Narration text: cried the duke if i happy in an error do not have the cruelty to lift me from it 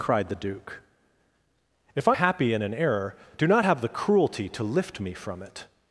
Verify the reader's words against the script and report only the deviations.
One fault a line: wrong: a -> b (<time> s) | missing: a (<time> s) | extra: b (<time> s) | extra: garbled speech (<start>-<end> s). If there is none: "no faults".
no faults